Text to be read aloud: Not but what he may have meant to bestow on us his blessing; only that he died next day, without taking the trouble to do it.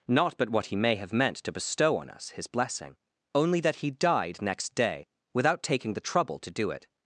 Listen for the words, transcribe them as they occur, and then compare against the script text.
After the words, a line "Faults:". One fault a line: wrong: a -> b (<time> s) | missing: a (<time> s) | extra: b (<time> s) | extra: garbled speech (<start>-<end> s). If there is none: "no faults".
Not but what he may have meant to bestow on us his blessing; only that he died next day, without taking the trouble to do it.
Faults:
no faults